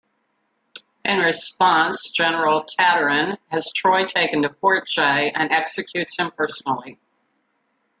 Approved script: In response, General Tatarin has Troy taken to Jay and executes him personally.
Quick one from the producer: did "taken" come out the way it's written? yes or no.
yes